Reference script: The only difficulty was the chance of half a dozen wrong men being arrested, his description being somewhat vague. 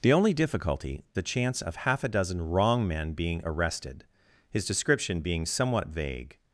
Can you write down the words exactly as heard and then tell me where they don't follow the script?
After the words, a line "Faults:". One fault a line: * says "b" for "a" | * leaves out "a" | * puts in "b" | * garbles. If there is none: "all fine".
The only difficulty the chance of half a dozen wrong men being arrested, his description being somewhat vague.
Faults:
* leaves out "was"